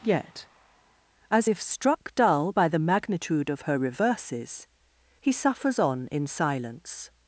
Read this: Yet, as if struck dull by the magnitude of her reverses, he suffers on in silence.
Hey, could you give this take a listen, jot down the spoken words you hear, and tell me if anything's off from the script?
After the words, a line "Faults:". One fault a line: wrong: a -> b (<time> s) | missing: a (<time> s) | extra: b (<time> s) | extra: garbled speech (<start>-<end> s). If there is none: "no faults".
Yet, as if struck dull by the magnitude of her reverses, he suffers on in silence.
Faults:
no faults